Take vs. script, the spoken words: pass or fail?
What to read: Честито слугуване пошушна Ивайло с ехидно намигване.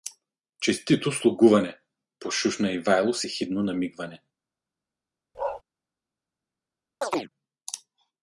pass